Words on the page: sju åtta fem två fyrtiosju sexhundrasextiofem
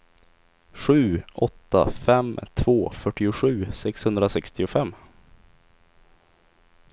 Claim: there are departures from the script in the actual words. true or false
false